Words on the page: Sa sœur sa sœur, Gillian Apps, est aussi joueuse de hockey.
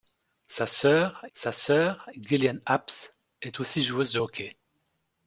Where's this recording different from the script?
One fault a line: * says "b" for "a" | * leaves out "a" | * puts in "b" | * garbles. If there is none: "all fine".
all fine